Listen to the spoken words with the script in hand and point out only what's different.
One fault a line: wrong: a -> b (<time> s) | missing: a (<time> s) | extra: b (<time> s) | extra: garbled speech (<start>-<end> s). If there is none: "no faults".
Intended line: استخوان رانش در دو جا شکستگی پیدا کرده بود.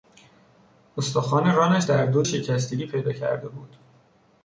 missing: جا (2.2 s)